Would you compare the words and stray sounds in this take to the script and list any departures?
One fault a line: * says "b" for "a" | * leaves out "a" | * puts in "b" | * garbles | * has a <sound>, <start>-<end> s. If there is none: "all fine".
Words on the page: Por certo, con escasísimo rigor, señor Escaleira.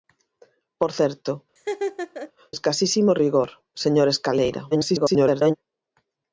* leaves out "con"
* has a laugh, 1.6-2.3 s
* garbles